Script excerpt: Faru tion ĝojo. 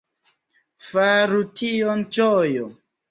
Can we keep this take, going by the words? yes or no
yes